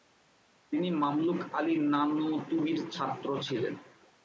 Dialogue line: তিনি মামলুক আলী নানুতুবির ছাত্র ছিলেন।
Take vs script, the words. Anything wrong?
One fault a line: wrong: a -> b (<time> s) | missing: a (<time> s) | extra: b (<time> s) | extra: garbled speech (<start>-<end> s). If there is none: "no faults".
no faults